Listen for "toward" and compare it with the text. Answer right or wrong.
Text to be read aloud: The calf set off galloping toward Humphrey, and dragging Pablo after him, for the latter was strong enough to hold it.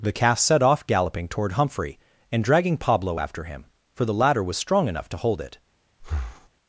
right